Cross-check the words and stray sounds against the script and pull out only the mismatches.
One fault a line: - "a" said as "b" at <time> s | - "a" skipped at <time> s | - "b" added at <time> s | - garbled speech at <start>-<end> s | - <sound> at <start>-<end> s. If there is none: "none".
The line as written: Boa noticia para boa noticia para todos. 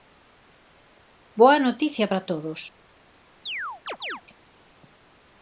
- "boa noticia para" skipped at 2.2 s
- chirp at 3.5-4.2 s